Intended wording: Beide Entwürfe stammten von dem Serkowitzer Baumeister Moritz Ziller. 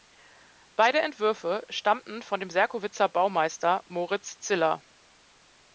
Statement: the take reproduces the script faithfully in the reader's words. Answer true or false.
true